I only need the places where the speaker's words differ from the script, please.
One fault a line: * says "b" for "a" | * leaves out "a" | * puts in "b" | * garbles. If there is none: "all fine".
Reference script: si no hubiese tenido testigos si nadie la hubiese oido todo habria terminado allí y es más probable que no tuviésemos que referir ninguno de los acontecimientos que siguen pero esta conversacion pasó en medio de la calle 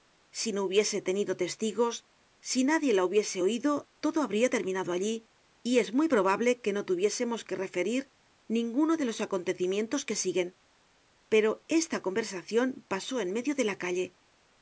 * says "muy" for "más"